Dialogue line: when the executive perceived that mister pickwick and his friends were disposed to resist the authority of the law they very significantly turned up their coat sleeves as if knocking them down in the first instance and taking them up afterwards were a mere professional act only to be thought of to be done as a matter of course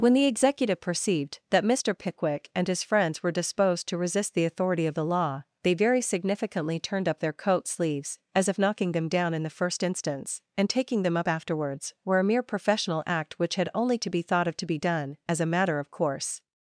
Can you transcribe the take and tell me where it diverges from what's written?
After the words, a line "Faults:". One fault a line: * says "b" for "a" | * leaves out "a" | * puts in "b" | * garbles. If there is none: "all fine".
when the executive perceived that mister pickwick and his friends were disposed to resist the authority of the law they very significantly turned up their coat sleeves as if knocking them down in the first instance and taking them up afterwards were a mere professional act which had only to be thought of to be done as a matter of course
Faults:
* puts in "which had"